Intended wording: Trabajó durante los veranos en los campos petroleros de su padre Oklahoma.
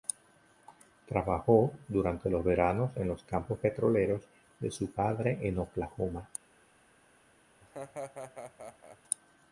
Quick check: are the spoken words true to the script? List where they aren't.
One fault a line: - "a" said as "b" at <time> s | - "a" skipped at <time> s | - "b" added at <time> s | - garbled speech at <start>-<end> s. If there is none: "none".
- "en" added at 5.4 s